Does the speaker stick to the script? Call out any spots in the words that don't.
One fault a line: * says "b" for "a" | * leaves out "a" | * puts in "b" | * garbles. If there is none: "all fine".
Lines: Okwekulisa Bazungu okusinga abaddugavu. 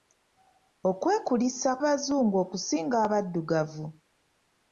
all fine